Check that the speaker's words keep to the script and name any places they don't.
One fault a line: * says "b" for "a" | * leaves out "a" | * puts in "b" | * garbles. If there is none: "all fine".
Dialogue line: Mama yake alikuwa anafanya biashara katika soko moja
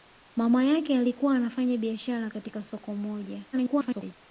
* garbles